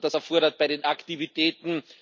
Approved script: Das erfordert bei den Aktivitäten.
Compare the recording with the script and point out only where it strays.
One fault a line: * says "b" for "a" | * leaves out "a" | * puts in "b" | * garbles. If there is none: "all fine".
all fine